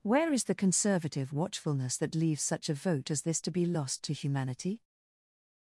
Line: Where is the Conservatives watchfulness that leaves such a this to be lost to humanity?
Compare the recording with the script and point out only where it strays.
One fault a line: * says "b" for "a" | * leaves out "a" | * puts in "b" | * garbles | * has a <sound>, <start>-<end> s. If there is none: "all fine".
* says "Conservative" for "Conservatives"
* puts in "vote as"